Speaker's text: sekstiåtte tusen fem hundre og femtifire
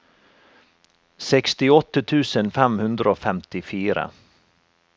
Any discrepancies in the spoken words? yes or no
no